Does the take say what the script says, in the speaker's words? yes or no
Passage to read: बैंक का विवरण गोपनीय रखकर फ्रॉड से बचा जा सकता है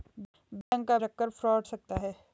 no